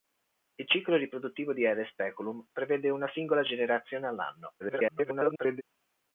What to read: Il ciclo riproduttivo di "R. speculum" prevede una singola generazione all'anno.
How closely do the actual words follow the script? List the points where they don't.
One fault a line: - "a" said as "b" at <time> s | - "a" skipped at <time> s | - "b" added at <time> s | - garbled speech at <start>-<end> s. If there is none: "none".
- garbled speech at 4.6-5.6 s